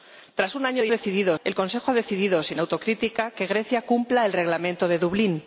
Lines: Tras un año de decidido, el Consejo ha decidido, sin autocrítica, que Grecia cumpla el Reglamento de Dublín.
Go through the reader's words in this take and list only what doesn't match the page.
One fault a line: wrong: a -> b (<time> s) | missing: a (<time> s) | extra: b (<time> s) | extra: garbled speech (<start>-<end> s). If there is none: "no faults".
no faults